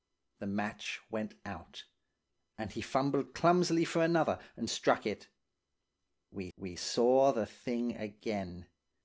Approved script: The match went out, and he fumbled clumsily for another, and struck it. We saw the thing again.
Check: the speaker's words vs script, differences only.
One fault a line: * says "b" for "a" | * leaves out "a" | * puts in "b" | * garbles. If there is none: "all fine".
* puts in "we"